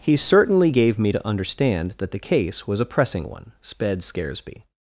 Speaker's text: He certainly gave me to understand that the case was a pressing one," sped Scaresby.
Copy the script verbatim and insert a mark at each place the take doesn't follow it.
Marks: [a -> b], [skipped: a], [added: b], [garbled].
He certainly gave me to understand that the case was a pressing one," sped Scaresby.